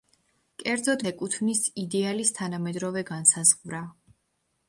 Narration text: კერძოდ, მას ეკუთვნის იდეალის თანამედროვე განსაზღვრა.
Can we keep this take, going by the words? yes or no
no